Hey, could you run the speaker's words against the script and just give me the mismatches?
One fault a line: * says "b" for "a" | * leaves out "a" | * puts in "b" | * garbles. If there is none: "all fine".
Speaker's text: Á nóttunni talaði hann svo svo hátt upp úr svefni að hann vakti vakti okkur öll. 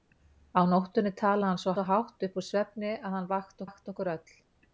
all fine